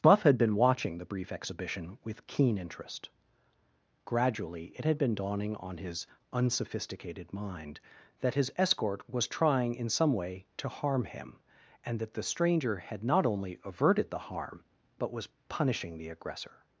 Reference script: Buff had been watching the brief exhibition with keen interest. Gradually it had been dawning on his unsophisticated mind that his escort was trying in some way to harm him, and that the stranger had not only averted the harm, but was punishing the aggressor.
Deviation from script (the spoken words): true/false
false